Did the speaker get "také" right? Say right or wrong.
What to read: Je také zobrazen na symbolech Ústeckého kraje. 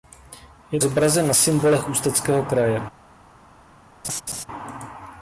wrong